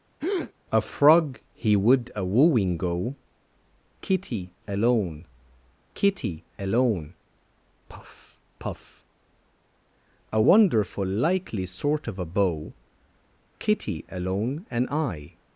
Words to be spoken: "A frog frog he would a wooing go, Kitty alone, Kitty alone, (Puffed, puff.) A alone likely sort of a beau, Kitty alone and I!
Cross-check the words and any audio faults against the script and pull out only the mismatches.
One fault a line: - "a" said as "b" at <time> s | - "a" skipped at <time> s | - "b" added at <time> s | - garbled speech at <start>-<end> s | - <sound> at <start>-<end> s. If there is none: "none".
- breath at 0.2-0.5 s
- "frog" skipped at 1.4 s
- "Puffed" said as "Puff" at 7.9 s
- "alone" said as "wonderful" at 10.4 s